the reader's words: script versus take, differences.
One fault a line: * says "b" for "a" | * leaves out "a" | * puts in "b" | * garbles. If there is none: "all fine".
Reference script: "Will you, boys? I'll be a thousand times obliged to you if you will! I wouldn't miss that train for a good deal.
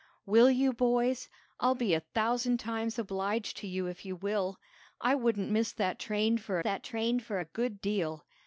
* puts in "that train for"